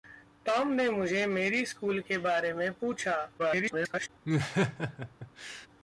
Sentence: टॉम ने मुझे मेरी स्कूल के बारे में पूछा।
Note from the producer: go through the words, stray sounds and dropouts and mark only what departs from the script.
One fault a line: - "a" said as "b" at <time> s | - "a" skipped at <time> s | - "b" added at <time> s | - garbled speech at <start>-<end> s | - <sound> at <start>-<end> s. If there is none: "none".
- garbled speech at 3.4-4.1 s
- laugh at 4.2-5.7 s